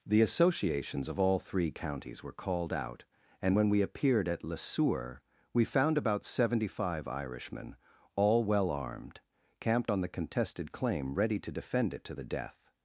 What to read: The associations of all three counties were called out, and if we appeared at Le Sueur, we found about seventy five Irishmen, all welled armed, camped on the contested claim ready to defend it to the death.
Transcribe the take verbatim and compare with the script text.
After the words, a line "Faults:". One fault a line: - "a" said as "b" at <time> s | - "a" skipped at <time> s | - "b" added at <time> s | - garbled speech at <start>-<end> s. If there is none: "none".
The associations of all three counties were called out, and when we appeared at Le Sueur, we found about seventy five Irishmen, all well armed, camped on the contested claim ready to defend it to the death.
Faults:
- "if" said as "when" at 3.6 s
- "welled" said as "well" at 8.4 s